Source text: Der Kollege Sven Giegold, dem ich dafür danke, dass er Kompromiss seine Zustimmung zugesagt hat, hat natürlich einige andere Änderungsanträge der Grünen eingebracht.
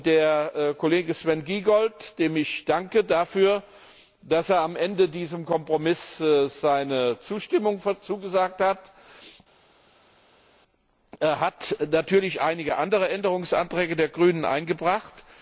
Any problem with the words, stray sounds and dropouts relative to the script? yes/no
yes